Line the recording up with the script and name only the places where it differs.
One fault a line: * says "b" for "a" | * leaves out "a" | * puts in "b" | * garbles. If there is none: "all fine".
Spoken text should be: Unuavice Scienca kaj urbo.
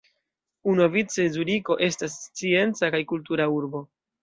* puts in "Zuriko estas"
* puts in "kultura"